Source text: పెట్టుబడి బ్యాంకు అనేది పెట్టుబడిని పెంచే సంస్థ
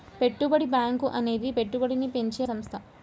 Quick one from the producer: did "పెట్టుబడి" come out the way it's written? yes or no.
yes